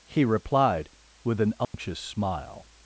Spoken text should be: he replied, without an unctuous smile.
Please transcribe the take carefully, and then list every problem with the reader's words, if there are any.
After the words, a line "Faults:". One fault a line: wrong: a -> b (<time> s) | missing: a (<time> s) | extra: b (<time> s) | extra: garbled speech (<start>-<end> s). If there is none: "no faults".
he replied, with an unctuous smile.
Faults:
wrong: without -> with (1.2 s)